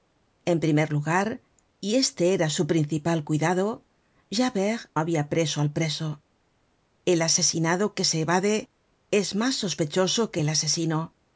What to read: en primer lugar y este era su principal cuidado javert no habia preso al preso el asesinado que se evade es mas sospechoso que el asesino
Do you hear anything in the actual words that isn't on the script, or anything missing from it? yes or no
yes